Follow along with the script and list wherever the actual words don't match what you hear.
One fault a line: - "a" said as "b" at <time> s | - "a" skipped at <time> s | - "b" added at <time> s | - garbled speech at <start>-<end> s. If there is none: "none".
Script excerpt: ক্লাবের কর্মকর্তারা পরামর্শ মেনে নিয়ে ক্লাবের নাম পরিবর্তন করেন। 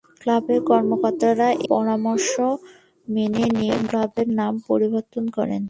none